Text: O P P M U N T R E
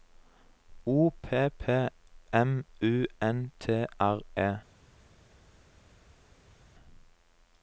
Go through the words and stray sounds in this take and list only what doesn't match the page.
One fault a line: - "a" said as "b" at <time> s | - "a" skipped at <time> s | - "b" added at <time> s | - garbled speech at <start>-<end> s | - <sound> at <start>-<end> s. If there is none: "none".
none